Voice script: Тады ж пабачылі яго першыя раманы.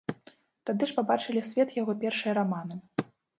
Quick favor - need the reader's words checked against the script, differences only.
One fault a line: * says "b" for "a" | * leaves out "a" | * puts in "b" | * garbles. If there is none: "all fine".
* puts in "свет"